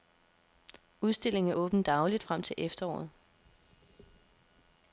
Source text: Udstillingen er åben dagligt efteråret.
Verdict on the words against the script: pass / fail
fail